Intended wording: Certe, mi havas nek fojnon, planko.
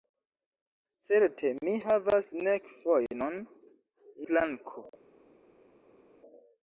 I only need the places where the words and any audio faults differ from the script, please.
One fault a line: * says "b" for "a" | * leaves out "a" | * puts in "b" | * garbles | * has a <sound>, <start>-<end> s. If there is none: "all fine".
all fine